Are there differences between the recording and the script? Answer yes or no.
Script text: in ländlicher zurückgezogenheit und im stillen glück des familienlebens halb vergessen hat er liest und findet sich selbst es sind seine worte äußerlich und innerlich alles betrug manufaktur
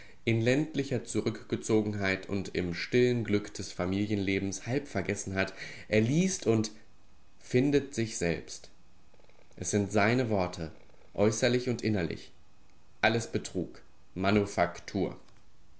no